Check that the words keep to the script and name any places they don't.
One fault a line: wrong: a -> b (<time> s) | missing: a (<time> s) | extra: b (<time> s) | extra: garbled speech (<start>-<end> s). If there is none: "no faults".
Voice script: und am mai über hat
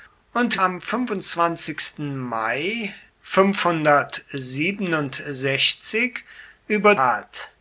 no faults